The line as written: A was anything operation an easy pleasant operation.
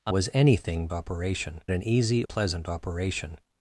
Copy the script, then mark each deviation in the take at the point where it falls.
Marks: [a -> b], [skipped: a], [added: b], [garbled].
A was anything operation an easy pleasant operation.